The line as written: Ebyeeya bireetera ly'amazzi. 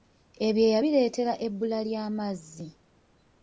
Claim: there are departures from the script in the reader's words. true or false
true